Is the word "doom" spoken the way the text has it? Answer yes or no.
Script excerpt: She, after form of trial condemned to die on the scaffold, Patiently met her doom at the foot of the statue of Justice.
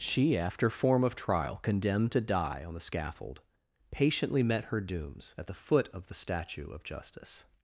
no